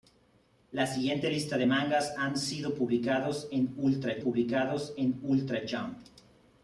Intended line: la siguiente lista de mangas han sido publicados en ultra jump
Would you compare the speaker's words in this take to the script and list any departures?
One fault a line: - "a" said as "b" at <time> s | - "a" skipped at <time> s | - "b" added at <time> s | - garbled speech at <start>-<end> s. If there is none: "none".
- "publicados en ultra" added at 4.2 s